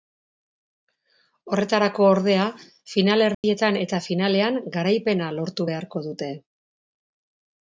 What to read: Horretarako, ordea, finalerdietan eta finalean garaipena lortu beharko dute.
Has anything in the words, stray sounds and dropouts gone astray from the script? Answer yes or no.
yes